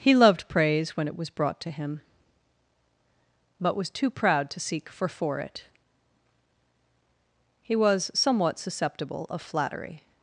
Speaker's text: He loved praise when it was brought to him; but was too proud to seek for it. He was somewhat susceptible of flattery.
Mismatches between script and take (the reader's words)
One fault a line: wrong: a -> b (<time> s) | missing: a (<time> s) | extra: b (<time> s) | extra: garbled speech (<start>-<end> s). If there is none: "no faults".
extra: for (5.1 s)